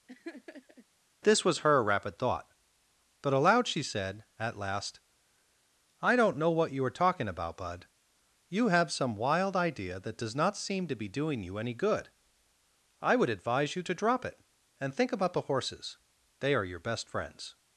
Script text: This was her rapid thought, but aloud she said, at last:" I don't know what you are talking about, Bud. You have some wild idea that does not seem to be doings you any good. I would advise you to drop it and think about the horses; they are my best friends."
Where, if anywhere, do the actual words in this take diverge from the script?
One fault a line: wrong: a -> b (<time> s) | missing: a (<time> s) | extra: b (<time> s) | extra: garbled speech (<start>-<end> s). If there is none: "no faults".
wrong: doings -> doing (11.1 s)
wrong: my -> your (16.6 s)